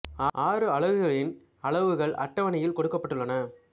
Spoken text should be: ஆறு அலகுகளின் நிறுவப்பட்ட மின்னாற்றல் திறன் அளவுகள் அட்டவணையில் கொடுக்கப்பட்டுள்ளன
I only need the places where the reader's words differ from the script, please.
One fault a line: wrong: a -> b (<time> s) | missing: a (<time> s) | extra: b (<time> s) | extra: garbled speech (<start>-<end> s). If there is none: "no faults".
missing: நிறுவப்பட்ட மின்னாற்றல் திறன் (1.3 s)